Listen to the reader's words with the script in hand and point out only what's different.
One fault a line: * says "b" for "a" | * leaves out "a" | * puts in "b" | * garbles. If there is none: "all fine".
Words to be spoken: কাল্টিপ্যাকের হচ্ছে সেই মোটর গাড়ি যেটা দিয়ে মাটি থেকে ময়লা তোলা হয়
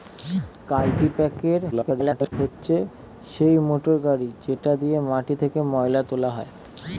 * garbles